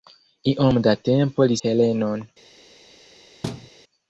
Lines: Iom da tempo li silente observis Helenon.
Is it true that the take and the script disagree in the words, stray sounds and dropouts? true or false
true